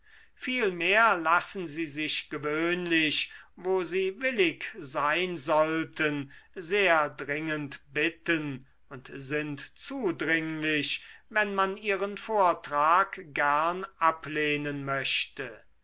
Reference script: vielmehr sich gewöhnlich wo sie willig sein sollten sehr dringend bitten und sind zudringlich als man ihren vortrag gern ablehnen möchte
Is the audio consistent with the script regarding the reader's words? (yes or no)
no